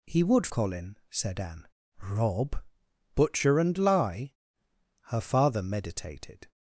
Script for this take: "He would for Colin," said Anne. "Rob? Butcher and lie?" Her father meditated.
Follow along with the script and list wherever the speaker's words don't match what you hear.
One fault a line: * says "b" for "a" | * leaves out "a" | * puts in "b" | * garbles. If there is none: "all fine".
* leaves out "for"